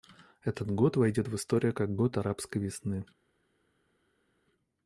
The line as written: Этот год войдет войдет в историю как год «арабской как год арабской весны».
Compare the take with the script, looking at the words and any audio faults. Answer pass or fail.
fail